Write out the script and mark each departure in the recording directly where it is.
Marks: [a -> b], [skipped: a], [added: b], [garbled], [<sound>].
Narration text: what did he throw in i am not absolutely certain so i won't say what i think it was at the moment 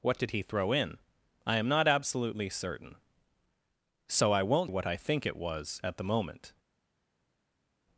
what did he throw in i am not absolutely certain so i won't [skipped: say] what i think it was at the moment